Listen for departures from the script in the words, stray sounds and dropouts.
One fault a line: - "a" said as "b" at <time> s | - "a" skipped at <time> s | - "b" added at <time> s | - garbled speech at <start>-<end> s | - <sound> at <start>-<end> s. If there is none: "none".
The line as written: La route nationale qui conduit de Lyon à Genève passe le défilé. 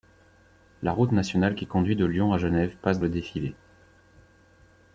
none